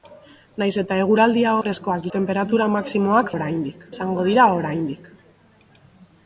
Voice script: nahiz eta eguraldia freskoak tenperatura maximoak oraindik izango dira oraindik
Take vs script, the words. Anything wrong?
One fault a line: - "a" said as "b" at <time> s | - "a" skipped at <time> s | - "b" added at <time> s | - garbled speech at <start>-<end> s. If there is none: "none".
none